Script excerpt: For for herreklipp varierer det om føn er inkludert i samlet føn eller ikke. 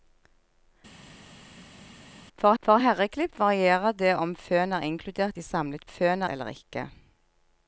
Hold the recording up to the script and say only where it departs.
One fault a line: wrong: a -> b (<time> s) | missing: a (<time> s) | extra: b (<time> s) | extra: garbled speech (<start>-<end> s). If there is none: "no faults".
no faults